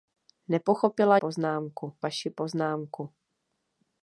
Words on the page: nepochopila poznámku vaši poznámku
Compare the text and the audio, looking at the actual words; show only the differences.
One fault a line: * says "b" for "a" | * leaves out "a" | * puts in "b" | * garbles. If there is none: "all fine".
all fine